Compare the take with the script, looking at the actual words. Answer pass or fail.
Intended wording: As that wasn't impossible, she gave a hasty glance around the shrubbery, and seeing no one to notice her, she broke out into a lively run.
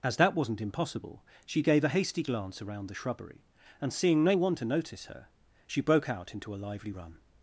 pass